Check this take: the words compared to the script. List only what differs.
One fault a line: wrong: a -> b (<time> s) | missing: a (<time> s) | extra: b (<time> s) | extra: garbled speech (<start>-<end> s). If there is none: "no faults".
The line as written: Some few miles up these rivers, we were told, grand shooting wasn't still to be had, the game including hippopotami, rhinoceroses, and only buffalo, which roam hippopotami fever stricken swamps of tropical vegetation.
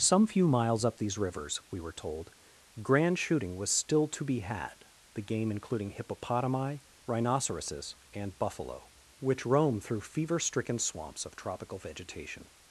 wrong: wasn't -> was (3.5 s)
missing: only (8.4 s)
wrong: hippopotami -> through (9.8 s)